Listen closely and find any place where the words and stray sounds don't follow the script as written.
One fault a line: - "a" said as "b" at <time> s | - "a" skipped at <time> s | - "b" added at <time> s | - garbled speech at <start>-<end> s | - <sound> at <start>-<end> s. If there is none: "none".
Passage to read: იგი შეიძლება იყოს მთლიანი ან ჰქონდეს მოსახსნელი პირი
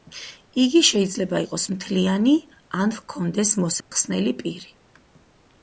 - dropout at 3.8-3.9 s